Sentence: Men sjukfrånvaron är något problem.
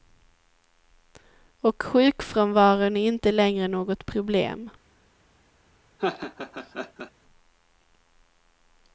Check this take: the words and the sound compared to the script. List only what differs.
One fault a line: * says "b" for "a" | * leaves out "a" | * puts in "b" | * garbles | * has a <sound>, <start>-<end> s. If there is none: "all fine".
* says "Och" for "Men"
* puts in "inte längre"
* has a laugh, 6.0-7.1 s